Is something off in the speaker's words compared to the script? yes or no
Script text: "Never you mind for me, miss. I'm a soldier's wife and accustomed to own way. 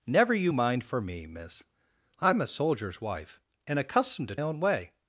no